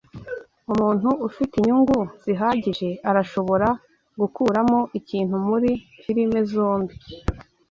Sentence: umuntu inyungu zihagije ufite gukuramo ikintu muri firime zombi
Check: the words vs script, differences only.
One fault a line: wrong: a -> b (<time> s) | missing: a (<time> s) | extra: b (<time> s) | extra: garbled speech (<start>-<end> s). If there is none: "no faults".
extra: ufite (1.3 s)
wrong: ufite -> arashobora (3.1 s)